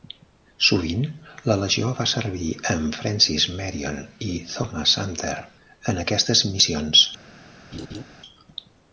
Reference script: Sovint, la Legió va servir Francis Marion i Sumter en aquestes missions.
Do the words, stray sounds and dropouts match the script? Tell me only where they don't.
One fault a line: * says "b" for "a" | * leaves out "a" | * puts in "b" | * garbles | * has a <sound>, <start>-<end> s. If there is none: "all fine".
* puts in "amb"
* puts in "Thomas"
* has a laugh, 7.7-8.0 s